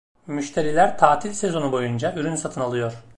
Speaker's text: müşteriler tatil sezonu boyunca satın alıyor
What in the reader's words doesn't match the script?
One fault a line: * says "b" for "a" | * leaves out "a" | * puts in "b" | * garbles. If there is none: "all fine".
* puts in "ürün"